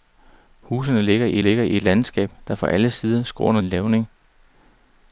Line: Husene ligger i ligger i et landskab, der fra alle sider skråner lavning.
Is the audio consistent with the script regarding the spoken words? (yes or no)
yes